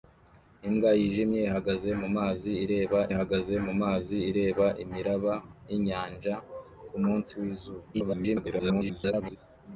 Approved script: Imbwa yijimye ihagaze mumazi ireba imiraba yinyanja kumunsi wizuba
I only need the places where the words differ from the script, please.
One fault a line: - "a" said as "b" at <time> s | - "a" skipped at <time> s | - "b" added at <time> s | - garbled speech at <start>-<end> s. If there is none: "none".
- "ihagaze mumazi ireba" added at 3.1 s
- garbled speech at 7.9-9.4 s